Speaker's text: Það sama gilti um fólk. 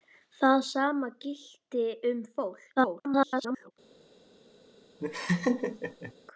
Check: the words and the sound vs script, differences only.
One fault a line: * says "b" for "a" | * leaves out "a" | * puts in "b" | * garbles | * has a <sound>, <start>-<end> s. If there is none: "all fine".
* garbles
* has a laugh, 5.0-6.1 s